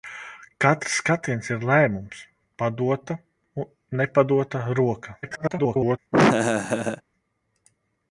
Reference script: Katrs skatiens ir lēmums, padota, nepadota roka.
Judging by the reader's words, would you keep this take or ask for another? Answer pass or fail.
fail